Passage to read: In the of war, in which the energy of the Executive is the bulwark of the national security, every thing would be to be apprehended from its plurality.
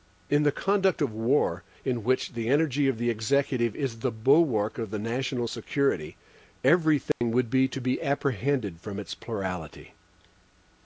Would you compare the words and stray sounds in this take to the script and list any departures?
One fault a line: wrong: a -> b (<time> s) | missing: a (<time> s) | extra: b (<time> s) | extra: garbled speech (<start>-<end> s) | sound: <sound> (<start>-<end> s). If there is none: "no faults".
extra: conduct (0.5 s)
sound: dropout (7.1-7.2 s)